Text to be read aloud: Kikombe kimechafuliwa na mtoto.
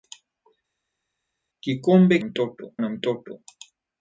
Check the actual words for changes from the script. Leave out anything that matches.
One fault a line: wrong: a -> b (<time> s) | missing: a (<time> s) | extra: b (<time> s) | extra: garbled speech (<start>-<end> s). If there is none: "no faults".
wrong: kimechafuliwa -> mtoto (2.2 s)